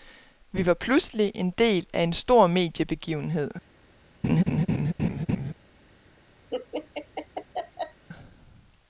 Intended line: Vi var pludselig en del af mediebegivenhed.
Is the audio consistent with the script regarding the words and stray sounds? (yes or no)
no